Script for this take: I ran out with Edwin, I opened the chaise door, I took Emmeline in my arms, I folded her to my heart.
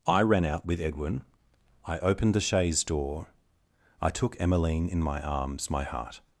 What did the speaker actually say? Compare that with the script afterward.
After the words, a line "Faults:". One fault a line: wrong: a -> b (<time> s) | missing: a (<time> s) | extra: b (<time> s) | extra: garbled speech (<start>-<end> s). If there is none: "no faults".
I ran out with Edwin, I opened the chaise door, I took Emmeline in my arms, my heart.
Faults:
missing: I folded her to (5.7 s)